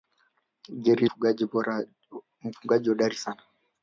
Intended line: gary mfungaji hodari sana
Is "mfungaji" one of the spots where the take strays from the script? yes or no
no